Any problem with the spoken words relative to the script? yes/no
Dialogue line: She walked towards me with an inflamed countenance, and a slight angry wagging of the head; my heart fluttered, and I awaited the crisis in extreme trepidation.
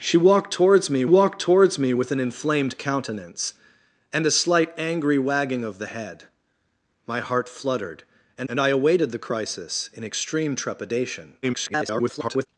yes